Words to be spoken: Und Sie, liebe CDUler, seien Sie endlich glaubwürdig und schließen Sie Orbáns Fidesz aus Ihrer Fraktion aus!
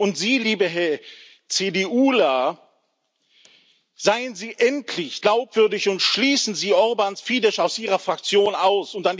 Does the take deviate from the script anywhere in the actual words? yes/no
no